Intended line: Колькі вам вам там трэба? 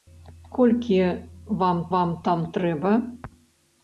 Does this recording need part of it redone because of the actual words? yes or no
no